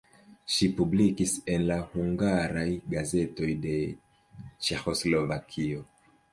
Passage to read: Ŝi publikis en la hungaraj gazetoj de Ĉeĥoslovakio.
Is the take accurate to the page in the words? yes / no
yes